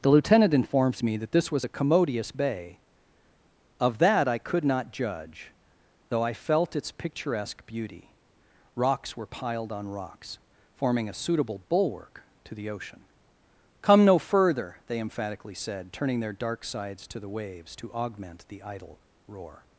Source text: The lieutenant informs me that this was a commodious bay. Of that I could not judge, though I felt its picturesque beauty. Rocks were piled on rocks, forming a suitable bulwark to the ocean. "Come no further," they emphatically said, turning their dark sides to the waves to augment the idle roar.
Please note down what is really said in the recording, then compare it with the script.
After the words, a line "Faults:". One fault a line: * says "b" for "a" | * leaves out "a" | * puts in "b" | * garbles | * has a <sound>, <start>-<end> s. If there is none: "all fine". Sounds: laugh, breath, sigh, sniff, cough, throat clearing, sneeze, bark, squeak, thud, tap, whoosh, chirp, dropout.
The lieutenant informs me that this was a commodious bay. Of that I could not judge, though I felt its picturesque beauty. Rocks were piled on rocks, forming a suitable bulwark to the ocean. "Come no further," they emphatically said, turning their dark sides to the waves to augment the idle roar.
Faults:
all fine